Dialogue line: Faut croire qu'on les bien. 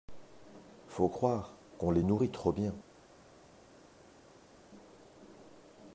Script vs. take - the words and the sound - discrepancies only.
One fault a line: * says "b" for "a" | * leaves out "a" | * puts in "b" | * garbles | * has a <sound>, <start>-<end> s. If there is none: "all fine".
* puts in "nourrit trop"